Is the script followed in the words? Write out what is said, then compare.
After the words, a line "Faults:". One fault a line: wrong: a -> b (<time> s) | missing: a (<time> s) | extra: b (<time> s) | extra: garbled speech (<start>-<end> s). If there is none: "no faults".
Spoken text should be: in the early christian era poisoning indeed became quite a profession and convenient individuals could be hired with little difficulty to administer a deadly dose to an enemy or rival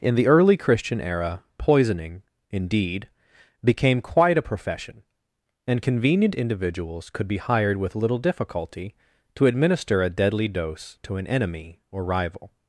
in the early christian era poisoning indeed became quite a profession and convenient individuals could be hired with little difficulty to administer a deadly dose to an enemy or rival
Faults:
no faults